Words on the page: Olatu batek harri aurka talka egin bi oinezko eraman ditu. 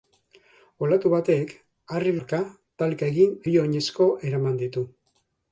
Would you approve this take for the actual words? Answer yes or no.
yes